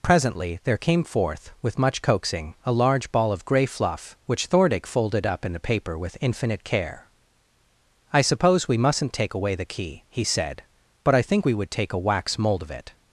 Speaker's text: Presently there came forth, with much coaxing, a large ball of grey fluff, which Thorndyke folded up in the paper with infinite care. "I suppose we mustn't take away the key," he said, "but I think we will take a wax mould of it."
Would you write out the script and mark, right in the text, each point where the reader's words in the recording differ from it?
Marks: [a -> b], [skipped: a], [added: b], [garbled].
Presently there came forth, with much coaxing, a large ball of grey fluff, which Thorndyke folded up in the paper with infinite care. "I suppose we mustn't take away the key," he said, "but I think we [will -> would] take a wax mould of it."